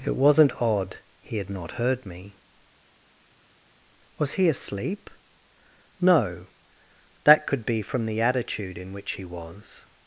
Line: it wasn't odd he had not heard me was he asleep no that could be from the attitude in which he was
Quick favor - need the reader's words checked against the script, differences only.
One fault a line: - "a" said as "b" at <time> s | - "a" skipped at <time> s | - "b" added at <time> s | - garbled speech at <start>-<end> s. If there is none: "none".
none